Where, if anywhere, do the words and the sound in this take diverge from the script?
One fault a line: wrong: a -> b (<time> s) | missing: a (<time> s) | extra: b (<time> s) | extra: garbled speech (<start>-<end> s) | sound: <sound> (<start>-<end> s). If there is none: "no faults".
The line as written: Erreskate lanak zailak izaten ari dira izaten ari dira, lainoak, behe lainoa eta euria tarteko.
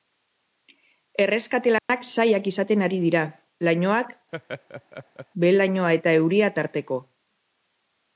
sound: dropout (1.8-1.9 s)
missing: izaten ari dira (3.2 s)
sound: laugh (4.3-5.3 s)